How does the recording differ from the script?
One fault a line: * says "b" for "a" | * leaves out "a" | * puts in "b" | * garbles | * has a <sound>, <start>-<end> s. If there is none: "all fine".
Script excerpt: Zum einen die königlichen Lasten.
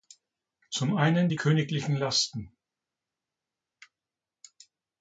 all fine